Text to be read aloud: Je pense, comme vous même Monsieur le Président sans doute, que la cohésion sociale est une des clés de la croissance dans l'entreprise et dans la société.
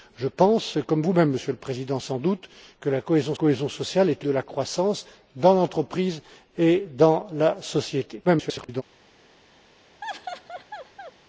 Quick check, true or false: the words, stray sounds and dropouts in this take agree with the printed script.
false